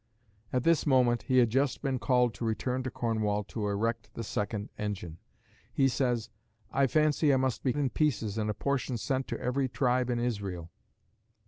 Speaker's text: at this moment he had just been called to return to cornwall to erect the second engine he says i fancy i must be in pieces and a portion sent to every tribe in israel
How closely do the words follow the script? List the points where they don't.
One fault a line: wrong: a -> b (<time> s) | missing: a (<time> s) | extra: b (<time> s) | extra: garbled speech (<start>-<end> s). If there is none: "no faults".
no faults